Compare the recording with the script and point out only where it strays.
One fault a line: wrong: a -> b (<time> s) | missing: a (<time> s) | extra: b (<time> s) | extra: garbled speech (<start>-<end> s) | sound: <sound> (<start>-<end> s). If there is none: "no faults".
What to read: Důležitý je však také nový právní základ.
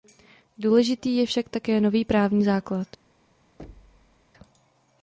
sound: thud (3.6-4.2 s)